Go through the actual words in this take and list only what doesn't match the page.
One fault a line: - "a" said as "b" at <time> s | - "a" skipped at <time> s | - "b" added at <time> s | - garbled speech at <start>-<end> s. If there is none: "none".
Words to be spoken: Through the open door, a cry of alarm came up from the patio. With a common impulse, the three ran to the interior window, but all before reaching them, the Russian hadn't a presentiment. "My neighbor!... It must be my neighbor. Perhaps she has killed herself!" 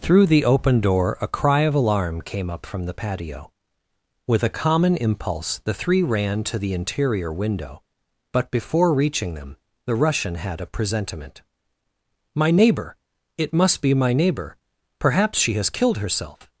- "all" skipped at 8.5 s
- "hadn't" said as "had" at 10.3 s